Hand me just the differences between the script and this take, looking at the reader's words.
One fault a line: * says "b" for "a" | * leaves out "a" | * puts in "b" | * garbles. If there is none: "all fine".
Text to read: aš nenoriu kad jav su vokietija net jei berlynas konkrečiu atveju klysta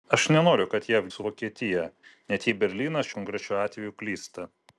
all fine